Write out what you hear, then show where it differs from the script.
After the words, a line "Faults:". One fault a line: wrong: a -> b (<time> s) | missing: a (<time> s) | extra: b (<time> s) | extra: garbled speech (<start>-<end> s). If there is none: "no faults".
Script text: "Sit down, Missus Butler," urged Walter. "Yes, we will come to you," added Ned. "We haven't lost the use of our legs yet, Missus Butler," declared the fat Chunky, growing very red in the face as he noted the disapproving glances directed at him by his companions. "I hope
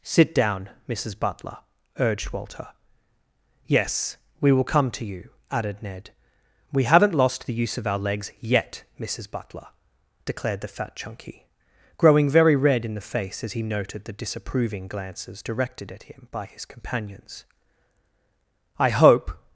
"Sit down, Missus Butler," urged Walter. "Yes, we will come to you," added Ned. "We haven't lost the use of our legs yet, Missus Butler," declared the fat Chunky, growing very red in the face as he noted the disapproving glances directed at him by his companions. "I hope
Faults:
no faults